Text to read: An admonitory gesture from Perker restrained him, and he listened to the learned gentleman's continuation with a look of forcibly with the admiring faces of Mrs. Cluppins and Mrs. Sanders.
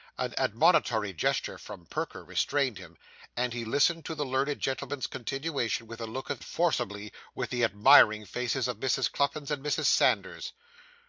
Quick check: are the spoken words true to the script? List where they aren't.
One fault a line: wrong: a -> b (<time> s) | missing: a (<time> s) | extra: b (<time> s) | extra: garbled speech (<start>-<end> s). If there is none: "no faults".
no faults